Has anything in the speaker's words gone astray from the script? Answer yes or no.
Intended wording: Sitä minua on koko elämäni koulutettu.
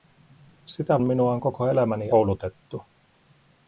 no